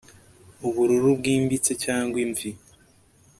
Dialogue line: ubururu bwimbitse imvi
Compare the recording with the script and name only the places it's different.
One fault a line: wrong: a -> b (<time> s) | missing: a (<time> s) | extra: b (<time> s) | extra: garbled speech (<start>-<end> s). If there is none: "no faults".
extra: cyangwa (1.8 s)